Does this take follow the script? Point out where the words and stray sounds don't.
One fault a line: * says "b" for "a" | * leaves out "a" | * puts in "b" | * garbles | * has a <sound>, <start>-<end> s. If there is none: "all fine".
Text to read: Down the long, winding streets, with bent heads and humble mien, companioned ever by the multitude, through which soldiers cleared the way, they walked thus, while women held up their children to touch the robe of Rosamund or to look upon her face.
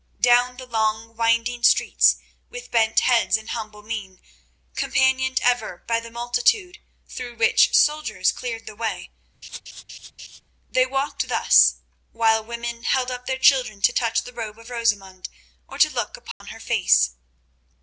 * has a laugh, 9.4-10.4 s
* has a dropout, 16.3-16.4 s